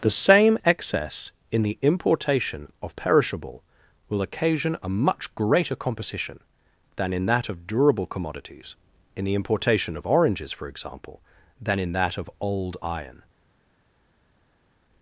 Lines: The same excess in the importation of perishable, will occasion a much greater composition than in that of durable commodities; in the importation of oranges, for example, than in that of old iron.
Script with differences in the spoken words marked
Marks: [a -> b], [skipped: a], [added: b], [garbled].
The same excess in the importation of perishable, will occasion a much greater composition than in that of durable commodities; in the importation of oranges, for example, than in that of old iron.